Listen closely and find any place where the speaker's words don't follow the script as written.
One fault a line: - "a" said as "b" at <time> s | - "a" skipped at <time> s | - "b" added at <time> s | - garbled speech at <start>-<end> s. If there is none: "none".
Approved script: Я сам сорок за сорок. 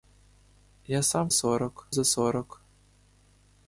none